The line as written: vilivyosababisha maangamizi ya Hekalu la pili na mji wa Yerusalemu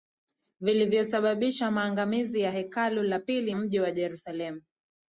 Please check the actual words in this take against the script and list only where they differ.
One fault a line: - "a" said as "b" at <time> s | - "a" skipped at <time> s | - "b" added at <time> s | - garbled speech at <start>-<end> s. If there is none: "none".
- "na" skipped at 3.6 s